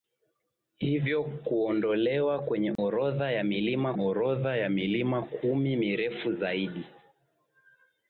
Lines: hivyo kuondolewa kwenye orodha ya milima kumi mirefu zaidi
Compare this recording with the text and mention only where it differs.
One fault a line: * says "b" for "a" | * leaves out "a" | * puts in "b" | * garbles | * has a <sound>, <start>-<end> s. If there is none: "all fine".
* has a dropout, 2.8-2.8 s
* puts in "orodha ya milima"